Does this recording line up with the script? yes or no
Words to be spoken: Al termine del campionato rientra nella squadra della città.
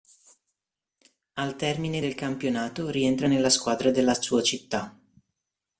no